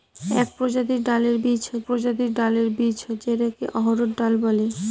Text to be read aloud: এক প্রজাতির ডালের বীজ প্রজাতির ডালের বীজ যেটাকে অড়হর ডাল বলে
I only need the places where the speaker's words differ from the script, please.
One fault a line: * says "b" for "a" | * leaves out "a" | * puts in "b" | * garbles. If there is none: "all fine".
all fine